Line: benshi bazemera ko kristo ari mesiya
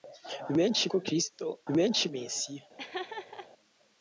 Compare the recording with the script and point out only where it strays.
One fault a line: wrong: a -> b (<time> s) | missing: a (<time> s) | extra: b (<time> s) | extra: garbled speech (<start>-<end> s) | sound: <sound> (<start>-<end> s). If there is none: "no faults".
missing: bazemera (0.8 s)
wrong: ari -> benshi (1.7 s)
sound: laugh (2.8-3.5 s)